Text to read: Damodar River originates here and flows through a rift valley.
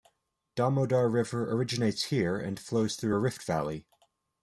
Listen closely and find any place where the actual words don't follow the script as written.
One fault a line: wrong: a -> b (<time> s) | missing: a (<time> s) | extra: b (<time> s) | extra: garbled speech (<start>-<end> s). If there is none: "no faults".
no faults